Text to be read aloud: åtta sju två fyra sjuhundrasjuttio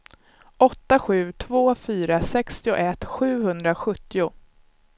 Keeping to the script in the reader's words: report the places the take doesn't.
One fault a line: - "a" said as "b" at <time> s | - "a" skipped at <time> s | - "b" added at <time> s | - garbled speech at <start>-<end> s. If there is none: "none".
- "sextioett" added at 2.2 s